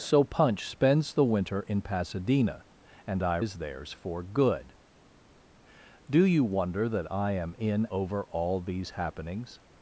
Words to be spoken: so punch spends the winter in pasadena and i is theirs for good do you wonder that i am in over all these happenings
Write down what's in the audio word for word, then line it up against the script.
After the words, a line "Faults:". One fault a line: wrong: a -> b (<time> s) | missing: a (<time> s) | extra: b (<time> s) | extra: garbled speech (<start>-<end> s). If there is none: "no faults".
so punch spends the winter in pasadena and i is theirs for good do you wonder that i am in over all these happenings
Faults:
no faults